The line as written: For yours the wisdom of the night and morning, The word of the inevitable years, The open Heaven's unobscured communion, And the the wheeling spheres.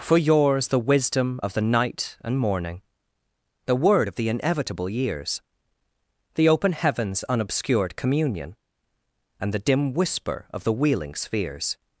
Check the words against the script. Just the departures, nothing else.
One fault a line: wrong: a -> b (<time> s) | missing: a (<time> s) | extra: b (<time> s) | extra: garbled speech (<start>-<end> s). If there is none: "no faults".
extra: dim whisper of (9.6 s)